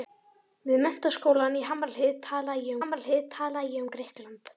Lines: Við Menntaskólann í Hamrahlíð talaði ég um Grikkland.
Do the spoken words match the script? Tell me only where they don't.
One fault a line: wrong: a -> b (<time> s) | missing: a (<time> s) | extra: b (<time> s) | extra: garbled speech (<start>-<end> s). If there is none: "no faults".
extra: Hamrahlíð talaði ég (2.8 s)